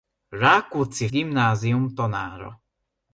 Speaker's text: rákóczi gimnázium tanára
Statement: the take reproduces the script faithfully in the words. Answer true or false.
true